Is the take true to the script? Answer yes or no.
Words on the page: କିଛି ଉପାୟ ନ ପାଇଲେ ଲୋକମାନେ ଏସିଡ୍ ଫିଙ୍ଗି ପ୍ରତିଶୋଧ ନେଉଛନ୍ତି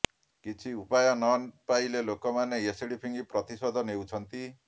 yes